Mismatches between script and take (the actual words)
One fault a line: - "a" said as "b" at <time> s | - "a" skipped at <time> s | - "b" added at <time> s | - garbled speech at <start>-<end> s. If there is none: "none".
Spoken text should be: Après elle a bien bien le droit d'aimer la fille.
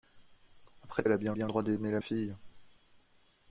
none